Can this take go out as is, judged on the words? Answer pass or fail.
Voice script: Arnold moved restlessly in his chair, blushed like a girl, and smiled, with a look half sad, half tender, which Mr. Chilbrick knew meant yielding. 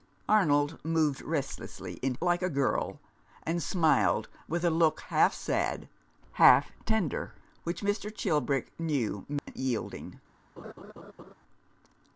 fail